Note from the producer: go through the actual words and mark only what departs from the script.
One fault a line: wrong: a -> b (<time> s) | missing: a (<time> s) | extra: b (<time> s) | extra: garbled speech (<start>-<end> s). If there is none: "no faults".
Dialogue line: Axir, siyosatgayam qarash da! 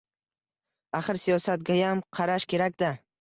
extra: kerak (2.6 s)